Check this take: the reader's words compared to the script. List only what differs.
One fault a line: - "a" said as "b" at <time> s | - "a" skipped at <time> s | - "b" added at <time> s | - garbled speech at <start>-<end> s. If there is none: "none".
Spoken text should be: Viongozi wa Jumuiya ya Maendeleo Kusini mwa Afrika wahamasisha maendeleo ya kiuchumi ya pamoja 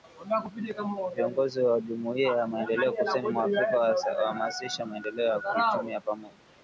none